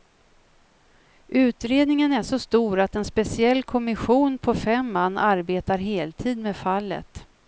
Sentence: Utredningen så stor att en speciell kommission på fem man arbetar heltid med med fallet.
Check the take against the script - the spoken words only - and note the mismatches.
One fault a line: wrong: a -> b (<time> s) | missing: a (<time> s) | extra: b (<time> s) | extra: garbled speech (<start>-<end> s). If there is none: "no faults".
extra: är (2.1 s)
missing: med (6.6 s)